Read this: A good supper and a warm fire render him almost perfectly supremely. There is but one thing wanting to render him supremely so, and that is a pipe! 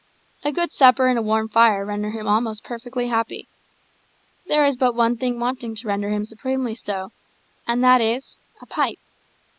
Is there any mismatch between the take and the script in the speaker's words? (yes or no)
yes